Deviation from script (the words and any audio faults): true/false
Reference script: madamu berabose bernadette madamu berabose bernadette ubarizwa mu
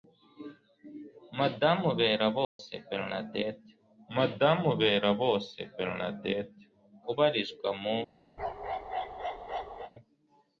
true